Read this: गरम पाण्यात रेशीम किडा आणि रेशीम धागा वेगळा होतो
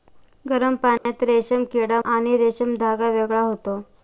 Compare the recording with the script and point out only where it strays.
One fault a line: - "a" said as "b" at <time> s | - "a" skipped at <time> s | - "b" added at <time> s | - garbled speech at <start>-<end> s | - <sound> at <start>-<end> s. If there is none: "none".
- dropout at 1.0-1.1 s